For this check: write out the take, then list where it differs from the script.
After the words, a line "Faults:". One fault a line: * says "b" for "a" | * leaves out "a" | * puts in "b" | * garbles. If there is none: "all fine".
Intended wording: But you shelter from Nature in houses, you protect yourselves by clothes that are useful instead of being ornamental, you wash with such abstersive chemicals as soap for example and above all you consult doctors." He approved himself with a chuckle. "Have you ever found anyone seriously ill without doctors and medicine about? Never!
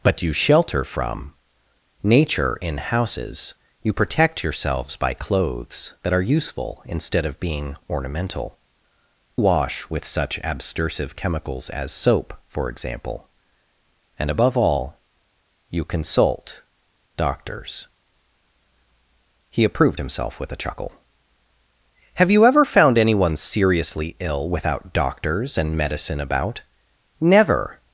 But you shelter from Nature in houses, you protect yourselves by clothes that are useful instead of being ornamental, wash with such abstersive chemicals as soap for example and above all you consult doctors." He approved himself with a chuckle. "Have you ever found anyone seriously ill without doctors and medicine about? Never!
Faults:
* leaves out "you"